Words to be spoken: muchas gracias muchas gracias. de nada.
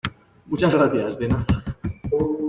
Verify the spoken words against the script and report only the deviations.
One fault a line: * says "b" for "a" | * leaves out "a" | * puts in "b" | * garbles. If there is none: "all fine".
* leaves out "muchas gracias"